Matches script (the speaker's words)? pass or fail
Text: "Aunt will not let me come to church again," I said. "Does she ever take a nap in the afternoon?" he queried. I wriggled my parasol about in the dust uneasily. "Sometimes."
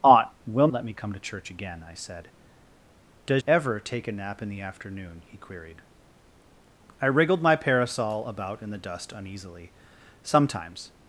fail